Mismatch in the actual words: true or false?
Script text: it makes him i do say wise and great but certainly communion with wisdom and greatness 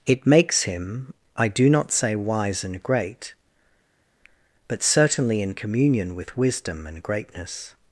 true